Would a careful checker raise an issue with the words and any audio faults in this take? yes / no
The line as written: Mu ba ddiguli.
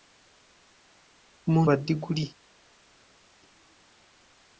no